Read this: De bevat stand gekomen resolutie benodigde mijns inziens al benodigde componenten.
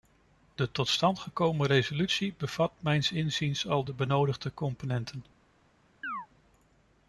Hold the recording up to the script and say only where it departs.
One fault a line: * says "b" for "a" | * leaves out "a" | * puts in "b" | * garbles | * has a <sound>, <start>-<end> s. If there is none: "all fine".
* says "tot" for "bevat"
* says "bevat" for "benodigde"
* puts in "de"
* has a chirp, 6.0-6.3 s